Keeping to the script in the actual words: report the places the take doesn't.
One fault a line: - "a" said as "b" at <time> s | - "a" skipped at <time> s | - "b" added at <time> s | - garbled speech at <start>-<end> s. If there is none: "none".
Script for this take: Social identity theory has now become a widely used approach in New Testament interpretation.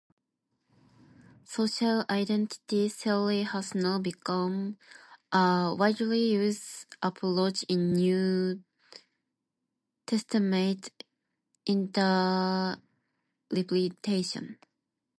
none